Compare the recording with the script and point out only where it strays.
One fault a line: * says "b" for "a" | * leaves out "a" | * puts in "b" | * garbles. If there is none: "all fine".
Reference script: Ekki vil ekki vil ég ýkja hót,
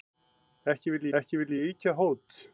all fine